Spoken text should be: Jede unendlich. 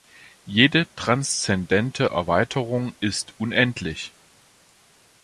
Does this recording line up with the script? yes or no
no